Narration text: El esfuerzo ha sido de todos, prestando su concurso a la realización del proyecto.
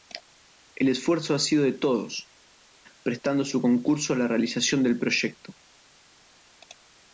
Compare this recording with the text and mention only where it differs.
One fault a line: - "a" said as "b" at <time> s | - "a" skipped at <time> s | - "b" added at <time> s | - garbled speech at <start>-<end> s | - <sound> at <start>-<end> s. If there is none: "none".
none